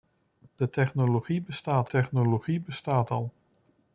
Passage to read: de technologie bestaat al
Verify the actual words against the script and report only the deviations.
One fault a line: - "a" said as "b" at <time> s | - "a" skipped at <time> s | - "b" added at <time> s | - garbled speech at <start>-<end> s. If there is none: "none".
- "technologie bestaat" added at 1.9 s